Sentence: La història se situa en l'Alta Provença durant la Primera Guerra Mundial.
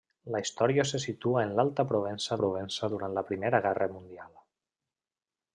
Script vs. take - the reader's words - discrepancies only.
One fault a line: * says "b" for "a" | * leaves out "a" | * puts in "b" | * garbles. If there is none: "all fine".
* puts in "Provença"